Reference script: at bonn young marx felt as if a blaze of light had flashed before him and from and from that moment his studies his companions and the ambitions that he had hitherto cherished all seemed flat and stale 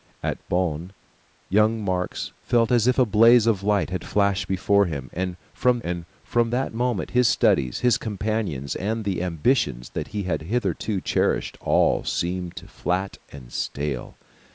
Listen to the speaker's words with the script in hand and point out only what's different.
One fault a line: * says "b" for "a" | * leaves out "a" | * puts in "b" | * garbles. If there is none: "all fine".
all fine